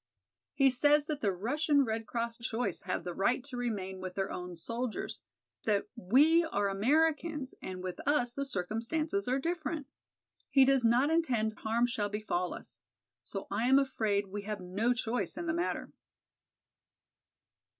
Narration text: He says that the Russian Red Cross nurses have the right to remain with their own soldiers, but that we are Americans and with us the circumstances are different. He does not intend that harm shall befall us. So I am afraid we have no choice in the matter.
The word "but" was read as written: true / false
false